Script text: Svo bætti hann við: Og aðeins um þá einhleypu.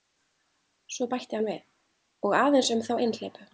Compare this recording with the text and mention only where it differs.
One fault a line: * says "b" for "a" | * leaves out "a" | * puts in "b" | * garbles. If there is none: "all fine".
all fine